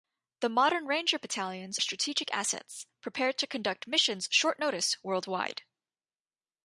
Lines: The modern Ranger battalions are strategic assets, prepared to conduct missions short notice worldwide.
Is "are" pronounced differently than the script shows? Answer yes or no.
yes